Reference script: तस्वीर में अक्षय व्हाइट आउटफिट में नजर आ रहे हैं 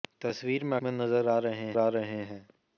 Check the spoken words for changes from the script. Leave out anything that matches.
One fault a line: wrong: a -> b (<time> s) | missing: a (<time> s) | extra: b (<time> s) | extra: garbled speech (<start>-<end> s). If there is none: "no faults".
wrong: अक्षय व्हाइट आउटफिट में नजर -> में नजर आ रहे (0.8 s)